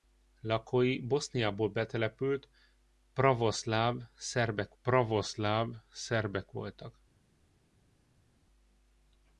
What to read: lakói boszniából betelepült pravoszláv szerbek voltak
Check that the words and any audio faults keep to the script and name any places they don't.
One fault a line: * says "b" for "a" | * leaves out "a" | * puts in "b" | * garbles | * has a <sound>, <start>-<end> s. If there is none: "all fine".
* puts in "pravoszláv szerbek"